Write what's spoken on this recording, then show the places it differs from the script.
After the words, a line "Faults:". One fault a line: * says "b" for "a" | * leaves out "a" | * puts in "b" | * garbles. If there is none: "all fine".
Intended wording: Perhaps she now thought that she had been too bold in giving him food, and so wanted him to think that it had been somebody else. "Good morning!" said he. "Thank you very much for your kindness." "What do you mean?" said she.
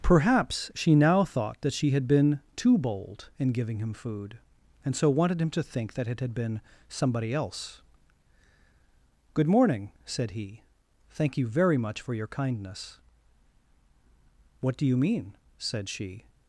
Perhaps she now thought that she had been too bold in giving him food, and so wanted him to think that it had been somebody else. "Good morning!" said he. "Thank you very much for your kindness." "What do you mean?" said she.
Faults:
all fine